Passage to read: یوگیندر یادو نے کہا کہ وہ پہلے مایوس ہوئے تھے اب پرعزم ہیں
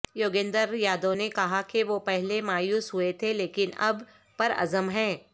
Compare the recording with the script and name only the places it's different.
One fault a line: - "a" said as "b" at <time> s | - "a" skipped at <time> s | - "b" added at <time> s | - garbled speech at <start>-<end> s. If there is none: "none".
- "لیکن" added at 3.3 s